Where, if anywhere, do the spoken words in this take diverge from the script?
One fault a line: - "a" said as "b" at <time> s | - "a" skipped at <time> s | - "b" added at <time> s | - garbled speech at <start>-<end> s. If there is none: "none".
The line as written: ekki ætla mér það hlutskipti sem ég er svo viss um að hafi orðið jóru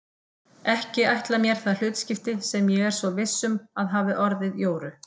none